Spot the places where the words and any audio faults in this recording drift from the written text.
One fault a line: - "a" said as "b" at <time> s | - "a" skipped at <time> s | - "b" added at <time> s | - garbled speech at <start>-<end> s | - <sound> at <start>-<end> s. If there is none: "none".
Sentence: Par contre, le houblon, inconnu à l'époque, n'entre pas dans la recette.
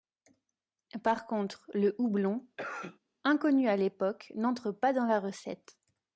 - cough at 2.6-3.0 s